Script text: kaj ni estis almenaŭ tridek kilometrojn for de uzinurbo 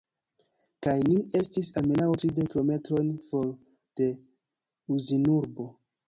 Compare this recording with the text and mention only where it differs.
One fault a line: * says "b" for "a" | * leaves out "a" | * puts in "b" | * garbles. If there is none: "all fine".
all fine